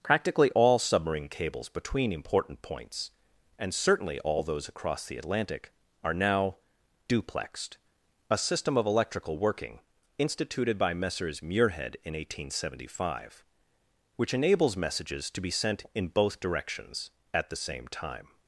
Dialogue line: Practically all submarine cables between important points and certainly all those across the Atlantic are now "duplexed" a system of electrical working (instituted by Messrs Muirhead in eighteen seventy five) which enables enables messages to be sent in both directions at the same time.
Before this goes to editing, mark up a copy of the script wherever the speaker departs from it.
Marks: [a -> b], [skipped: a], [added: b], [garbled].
Practically all submarine cables between important points and certainly all those across the Atlantic are now "duplexed" a system of electrical working (instituted by Messrs Muirhead in eighteen seventy five) which enables [skipped: enables] messages to be sent in both directions at the same time.